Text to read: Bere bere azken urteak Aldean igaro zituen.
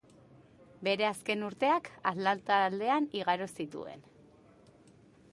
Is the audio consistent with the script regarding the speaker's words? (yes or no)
no